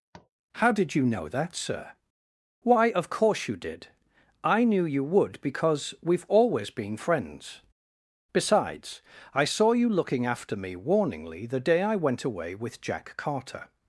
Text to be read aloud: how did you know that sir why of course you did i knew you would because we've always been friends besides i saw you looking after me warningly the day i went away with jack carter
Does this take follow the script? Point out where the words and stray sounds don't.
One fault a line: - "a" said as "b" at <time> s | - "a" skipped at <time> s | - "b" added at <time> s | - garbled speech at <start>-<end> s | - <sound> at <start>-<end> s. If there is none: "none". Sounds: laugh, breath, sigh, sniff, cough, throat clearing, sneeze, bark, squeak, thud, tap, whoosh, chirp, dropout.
- tap at 0.1-0.3 s